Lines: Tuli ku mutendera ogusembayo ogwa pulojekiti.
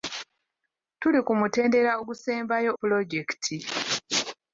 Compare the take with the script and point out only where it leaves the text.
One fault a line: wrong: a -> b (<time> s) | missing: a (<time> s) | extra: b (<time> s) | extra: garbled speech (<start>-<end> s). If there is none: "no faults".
missing: ogwa (2.7 s)